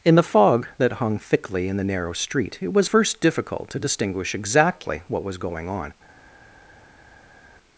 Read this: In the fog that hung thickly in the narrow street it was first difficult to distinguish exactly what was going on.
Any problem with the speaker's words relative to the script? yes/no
no